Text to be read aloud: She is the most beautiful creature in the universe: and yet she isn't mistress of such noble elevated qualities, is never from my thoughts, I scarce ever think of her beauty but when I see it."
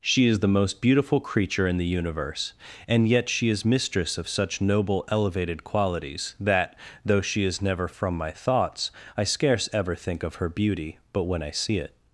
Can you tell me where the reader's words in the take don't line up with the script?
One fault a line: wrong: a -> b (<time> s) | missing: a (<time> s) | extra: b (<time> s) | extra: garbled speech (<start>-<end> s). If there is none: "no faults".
wrong: isn't -> is (3.5 s)
extra: that though she (6.4 s)